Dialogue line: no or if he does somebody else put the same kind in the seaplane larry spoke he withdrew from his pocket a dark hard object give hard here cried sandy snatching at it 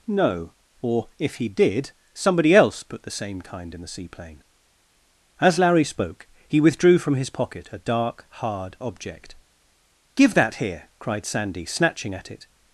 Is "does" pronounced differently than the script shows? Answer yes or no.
yes